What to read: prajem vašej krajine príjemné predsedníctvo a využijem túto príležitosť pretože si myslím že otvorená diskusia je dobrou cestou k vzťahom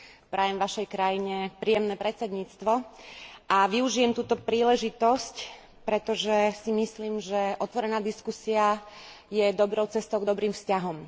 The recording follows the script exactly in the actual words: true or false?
false